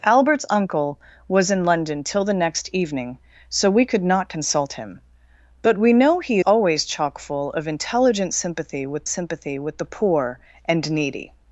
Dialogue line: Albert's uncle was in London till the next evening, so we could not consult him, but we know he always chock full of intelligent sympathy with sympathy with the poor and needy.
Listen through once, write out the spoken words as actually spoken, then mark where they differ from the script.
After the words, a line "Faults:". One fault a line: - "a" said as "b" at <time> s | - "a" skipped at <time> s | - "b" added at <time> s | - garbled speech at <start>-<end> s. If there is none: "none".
Albert's uncle was in London till the next evening, so we could not consult him, but we know he always chock full of intelligent sympathy with sympathy with the poor and needy.
Faults:
none